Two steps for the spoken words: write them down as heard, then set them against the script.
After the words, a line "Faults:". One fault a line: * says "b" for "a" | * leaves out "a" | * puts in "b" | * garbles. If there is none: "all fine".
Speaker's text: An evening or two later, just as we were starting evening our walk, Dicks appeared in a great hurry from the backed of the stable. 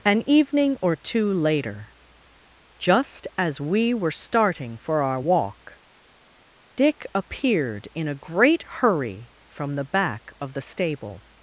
An evening or two later, just as we were starting for our walk, Dick appeared in a great hurry from the back of the stable.
Faults:
* says "for" for "evening"
* says "Dick" for "Dicks"
* says "back" for "backed"